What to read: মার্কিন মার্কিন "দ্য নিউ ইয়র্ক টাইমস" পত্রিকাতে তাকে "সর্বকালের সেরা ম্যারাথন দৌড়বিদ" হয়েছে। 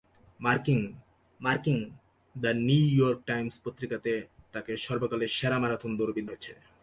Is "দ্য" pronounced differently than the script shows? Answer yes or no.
no